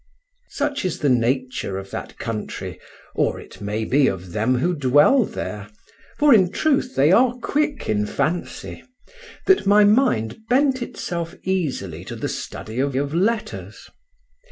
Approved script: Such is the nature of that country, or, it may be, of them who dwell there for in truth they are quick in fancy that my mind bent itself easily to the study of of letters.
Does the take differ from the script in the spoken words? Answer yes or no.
no